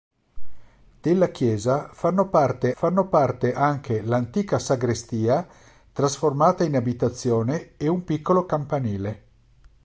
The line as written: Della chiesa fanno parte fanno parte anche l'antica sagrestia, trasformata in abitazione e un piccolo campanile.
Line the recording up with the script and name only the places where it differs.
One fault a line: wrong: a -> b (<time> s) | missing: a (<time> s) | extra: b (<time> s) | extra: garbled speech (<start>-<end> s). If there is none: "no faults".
no faults